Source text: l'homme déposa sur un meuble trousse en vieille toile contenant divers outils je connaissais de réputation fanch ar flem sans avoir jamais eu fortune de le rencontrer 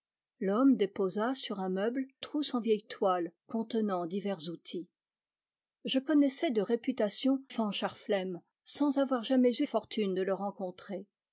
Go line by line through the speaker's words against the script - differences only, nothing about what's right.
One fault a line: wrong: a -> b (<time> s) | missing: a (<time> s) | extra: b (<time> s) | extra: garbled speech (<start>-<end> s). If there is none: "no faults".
no faults